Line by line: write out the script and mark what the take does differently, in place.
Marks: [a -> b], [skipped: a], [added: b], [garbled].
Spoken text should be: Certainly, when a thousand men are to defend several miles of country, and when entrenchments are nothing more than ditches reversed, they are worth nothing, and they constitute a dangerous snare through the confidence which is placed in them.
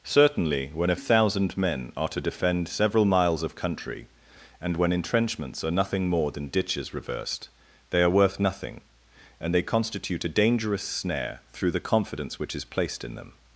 Certainly, when a thousand men are to defend several miles of country, and when entrenchments are nothing more than ditches reversed, they are worth nothing, and they constitute a dangerous snare through the confidence which is placed in them.